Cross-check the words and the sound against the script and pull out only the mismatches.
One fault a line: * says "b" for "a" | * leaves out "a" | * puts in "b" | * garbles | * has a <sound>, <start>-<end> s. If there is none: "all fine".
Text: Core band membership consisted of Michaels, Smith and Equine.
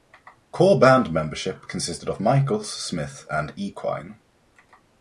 all fine